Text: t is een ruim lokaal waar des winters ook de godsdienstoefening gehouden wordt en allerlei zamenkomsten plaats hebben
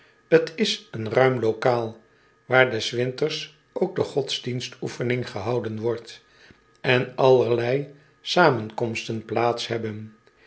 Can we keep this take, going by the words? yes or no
yes